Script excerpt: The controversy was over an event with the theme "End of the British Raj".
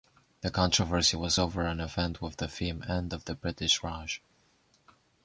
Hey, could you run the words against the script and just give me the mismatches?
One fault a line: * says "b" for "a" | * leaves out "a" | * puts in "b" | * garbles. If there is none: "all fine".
all fine